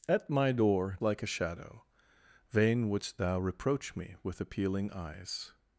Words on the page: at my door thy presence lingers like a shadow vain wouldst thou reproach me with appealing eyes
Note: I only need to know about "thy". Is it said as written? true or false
false